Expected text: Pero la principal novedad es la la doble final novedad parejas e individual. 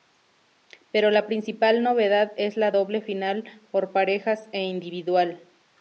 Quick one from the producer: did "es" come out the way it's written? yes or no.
yes